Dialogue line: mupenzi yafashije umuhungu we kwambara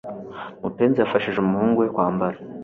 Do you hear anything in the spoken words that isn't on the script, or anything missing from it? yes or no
no